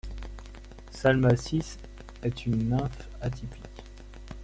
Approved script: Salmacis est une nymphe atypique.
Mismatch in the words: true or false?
false